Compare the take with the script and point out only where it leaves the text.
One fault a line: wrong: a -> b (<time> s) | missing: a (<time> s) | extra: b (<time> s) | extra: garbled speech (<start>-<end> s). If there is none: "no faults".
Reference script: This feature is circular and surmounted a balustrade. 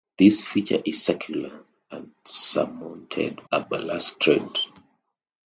no faults